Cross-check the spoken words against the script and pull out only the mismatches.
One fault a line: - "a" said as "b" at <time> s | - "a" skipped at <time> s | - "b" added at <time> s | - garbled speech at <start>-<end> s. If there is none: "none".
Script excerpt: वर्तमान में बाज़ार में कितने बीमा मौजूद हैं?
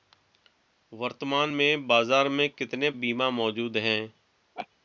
none